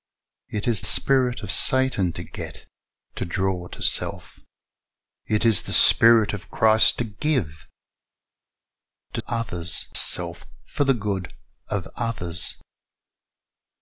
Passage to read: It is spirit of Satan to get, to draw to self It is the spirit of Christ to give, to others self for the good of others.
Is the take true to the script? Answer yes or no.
yes